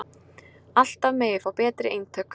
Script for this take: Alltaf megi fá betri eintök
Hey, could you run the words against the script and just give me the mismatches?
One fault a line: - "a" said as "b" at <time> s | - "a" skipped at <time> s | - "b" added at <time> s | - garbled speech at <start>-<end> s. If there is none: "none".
none